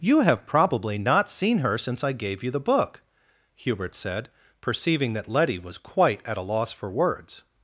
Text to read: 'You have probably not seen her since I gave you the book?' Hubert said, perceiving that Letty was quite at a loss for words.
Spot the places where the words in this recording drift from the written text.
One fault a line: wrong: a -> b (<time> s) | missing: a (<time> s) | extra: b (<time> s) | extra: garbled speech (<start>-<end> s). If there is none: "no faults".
no faults